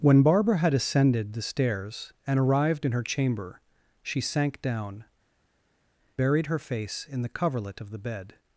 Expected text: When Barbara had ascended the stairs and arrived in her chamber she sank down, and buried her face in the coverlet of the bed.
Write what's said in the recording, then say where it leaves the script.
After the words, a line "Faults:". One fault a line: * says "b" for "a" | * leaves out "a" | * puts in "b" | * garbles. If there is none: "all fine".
When Barbara had ascended the stairs and arrived in her chamber she sank down, buried her face in the coverlet of the bed.
Faults:
* leaves out "and"